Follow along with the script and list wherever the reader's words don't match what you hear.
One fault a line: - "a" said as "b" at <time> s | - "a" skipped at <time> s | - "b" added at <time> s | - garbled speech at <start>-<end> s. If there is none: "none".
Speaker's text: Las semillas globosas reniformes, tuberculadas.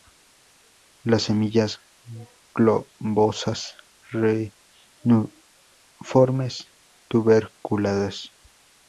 none